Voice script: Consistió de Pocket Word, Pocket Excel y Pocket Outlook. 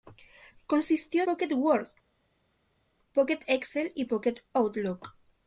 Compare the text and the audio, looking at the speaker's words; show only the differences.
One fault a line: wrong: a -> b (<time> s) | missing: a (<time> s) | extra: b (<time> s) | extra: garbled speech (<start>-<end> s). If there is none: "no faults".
missing: de (1.3 s)